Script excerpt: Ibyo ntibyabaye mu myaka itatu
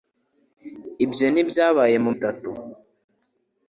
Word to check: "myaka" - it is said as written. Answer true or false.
false